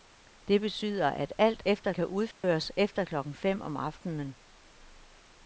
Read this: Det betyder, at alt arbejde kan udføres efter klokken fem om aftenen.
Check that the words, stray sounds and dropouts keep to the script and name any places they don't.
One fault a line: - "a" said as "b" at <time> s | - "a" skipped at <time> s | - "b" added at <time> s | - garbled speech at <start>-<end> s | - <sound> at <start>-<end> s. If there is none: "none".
- "arbejde" said as "efter" at 1.6 s
- dropout at 2.3-2.4 s